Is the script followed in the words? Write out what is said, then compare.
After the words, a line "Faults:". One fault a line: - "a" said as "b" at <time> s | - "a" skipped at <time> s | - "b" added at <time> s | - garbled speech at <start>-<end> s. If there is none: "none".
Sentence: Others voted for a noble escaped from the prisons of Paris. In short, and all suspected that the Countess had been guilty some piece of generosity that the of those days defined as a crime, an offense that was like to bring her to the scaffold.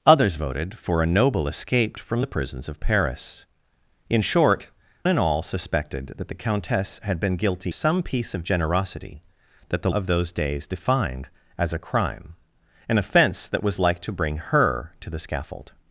Others voted for a noble escaped from the prisons of Paris. In short, and all suspected that the Countess had been guilty some piece of generosity that the of those days defined as a crime, an offense that was like to bring her to the scaffold.
Faults:
none